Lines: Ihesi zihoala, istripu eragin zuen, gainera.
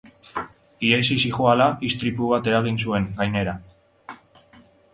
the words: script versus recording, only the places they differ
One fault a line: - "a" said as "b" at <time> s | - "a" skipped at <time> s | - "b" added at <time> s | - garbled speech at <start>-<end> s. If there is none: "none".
- "bat" added at 2.4 s